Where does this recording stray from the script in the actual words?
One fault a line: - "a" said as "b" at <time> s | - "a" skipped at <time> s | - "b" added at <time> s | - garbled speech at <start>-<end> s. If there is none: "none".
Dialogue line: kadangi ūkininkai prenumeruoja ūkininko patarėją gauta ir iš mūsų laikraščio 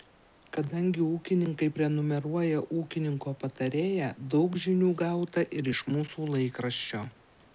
- "daug žinių" added at 4.3 s